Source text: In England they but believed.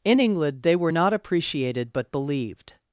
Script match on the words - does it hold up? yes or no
no